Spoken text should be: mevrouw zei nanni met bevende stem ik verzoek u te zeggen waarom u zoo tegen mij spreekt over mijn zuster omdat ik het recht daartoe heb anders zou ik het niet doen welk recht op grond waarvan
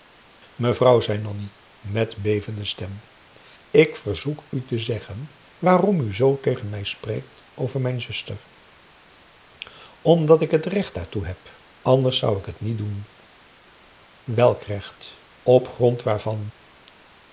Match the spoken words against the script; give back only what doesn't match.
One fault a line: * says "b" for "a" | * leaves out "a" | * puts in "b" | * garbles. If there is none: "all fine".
all fine